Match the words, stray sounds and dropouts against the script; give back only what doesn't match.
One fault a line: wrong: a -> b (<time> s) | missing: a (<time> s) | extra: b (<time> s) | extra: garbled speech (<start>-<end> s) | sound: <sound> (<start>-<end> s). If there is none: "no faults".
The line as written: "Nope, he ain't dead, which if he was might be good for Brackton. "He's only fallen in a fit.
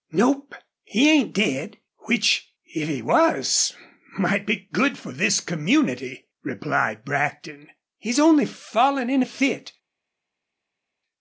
extra: this community replied (5.1 s)